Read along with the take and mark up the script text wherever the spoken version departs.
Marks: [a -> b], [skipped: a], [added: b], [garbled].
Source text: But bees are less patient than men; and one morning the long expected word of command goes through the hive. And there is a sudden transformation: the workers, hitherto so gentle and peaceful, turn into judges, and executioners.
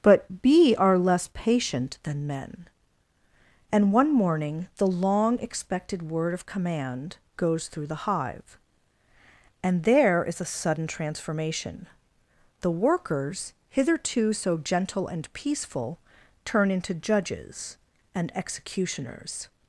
But [bees -> bee] are less patient than men; and one morning the long expected word of command goes through the hive. And there is a sudden transformation: the workers, hitherto so gentle and peaceful, turn into judges, and executioners.